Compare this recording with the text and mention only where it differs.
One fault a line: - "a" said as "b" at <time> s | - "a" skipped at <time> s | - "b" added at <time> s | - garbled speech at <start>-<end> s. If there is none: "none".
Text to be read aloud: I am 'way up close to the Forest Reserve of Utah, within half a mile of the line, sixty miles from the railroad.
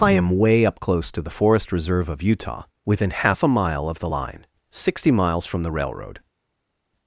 none